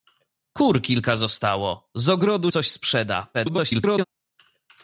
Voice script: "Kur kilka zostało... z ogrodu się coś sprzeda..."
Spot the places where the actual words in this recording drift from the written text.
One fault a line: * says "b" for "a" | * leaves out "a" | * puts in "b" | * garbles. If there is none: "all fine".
* leaves out "się"
* garbles